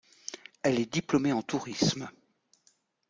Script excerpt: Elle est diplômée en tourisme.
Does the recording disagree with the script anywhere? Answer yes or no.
no